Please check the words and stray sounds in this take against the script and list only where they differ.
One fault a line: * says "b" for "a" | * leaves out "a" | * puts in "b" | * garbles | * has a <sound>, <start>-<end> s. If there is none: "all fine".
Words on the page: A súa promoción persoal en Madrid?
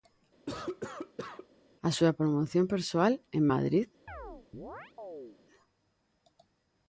* has a cough, 0.5-1.5 s
* has a chirp, 4.1-5.4 s